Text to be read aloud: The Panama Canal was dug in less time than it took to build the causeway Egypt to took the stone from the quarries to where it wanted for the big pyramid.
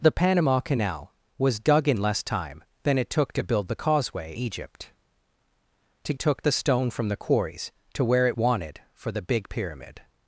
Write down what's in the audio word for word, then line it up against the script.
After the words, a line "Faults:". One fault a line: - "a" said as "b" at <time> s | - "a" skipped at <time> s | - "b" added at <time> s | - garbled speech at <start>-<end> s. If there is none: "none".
The Panama Canal was dug in less time than it took to build the causeway Egypt to took the stone from the quarries to where it wanted for the big pyramid.
Faults:
none